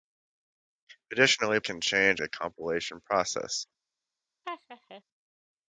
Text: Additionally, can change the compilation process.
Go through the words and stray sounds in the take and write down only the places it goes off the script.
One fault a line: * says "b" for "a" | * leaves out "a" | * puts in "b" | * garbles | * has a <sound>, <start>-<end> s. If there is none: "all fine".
* has a laugh, 4.4-5.0 s